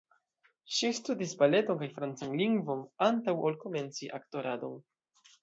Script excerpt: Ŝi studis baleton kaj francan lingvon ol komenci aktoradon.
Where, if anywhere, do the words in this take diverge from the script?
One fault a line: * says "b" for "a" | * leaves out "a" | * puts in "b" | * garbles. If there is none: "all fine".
* puts in "antaŭ"